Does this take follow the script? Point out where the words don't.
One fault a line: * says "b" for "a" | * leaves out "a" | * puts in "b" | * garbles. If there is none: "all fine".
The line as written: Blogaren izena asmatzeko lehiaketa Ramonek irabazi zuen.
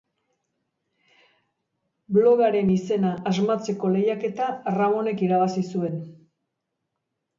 all fine